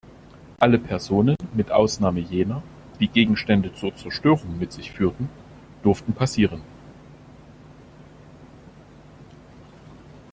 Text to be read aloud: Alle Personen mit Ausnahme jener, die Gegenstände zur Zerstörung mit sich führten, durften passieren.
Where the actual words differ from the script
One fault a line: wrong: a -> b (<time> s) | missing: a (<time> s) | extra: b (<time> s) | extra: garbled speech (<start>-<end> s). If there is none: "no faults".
no faults